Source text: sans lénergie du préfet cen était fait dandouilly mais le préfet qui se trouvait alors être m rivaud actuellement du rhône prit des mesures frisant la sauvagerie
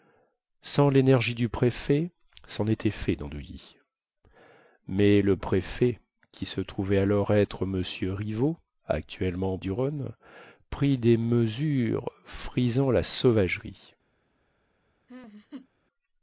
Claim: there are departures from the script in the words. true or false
false